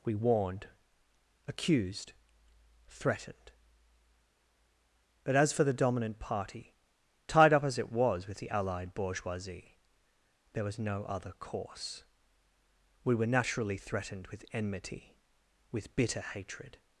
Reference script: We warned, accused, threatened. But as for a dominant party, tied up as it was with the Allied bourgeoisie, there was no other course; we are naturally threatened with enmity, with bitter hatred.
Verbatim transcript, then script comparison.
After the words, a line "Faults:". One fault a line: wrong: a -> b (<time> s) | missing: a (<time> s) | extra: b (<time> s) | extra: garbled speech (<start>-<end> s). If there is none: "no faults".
We warned, accused, threatened. But as for the dominant party, tied up as it was with the Allied bourgeoisie, there was no other course; we were naturally threatened with enmity, with bitter hatred.
Faults:
wrong: a -> the (5.6 s)
wrong: are -> were (13.2 s)